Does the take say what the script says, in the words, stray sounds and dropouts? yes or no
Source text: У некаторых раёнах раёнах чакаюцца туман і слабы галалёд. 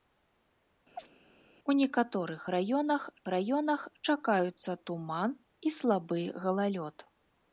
no